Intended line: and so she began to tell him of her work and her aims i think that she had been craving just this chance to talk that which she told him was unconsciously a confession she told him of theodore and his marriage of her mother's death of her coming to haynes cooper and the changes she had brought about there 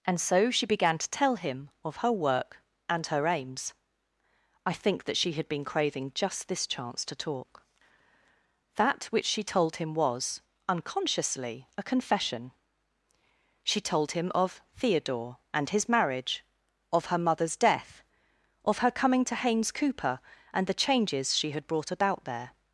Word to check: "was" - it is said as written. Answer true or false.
true